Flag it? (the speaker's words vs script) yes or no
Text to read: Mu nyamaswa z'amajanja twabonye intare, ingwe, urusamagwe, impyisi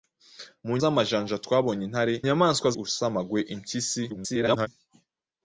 yes